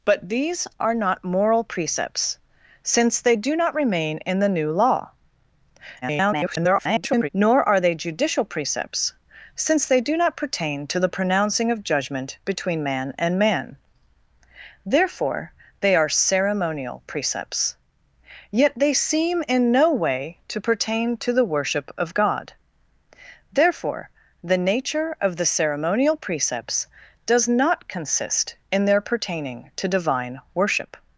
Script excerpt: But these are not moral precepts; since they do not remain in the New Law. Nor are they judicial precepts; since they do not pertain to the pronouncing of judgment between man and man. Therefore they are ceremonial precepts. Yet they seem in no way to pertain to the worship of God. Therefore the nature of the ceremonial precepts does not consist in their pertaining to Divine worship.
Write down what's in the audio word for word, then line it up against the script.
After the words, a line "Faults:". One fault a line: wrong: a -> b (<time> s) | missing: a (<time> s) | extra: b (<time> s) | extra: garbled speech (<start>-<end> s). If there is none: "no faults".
But these are not moral precepts; since they do not remain in the New Law. [garbled] Nor are they judicial precepts; since they do not pertain to the pronouncing of judgment between man and man. Therefore they are ceremonial precepts. Yet they seem in no way to pertain to the worship of God. Therefore the nature of the ceremonial precepts does not consist in their pertaining to Divine worship.
Faults:
extra: garbled speech (6.0-7.3 s)